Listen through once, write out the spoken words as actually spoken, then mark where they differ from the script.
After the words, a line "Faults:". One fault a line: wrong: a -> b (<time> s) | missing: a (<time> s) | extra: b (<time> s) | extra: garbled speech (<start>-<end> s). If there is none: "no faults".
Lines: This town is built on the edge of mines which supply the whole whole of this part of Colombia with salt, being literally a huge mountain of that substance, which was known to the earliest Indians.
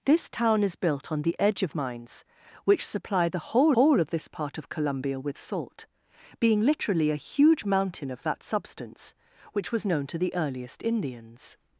This town is built on the edge of mines which supply the whole whole of this part of Colombia with salt, being literally a huge mountain of that substance, which was known to the earliest Indians.
Faults:
no faults